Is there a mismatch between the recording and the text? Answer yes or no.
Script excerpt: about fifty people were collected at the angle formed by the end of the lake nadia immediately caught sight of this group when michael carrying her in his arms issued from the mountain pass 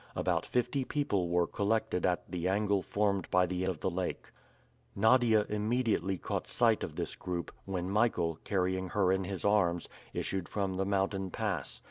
yes